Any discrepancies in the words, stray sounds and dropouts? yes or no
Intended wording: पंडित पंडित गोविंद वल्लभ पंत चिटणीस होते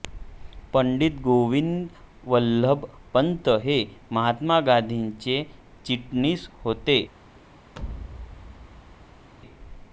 yes